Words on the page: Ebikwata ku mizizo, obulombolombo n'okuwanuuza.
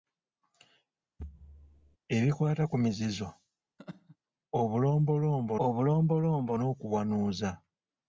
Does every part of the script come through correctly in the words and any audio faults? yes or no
no